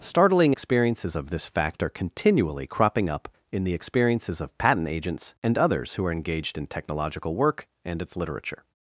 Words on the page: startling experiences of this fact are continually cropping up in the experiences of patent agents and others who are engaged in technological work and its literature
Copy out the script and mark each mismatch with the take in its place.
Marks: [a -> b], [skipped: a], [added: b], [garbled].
startling experiences of this fact are continually cropping up in the experiences of patent agents and others who are engaged in technological work and its literature